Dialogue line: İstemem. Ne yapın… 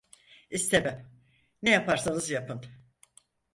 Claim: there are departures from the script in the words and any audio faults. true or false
true